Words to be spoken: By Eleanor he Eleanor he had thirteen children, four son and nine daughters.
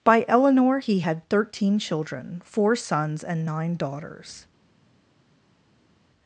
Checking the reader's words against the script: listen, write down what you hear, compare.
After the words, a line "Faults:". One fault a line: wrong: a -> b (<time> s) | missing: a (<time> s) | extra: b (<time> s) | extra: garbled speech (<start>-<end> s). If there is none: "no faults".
By Eleanor he had thirteen children, four sons and nine daughters.
Faults:
missing: Eleanor he (1.0 s)
wrong: son -> sons (2.8 s)